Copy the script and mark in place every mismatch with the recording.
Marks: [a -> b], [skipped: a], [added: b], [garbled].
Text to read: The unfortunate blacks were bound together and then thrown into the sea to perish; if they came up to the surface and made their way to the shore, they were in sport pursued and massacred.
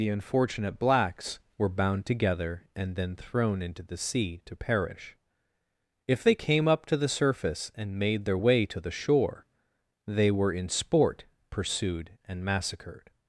The unfortunate blacks were bound together and then thrown into the sea to perish; if they came up to the surface and made their way to the shore, they were in sport pursued and massacred.